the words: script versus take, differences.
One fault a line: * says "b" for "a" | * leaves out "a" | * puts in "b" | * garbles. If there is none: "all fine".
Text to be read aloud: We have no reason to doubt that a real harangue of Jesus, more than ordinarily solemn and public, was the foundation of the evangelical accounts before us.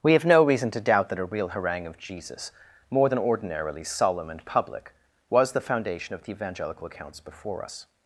all fine